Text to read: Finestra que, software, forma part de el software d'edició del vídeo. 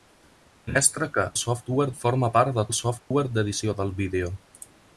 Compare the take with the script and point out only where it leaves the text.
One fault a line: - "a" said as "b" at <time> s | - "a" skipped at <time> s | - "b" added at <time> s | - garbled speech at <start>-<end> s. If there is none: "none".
none